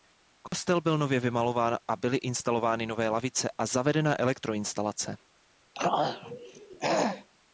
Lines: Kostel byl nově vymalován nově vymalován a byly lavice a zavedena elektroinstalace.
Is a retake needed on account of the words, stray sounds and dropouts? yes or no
yes